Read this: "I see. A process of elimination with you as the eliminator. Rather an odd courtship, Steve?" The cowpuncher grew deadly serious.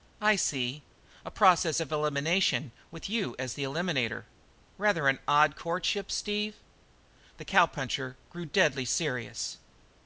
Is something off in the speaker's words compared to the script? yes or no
no